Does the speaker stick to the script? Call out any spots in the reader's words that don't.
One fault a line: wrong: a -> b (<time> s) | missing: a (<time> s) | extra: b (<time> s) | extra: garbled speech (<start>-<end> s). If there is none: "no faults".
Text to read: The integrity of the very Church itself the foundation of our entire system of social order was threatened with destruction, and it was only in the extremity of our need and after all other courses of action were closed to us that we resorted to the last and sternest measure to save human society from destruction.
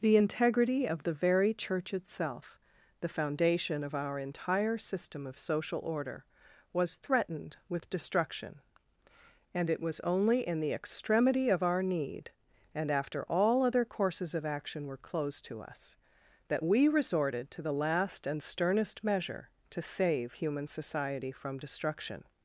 no faults